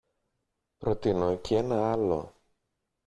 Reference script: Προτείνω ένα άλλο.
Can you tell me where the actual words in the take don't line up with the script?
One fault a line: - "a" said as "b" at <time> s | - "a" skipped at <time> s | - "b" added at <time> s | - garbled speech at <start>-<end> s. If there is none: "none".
- "κι" added at 1.4 s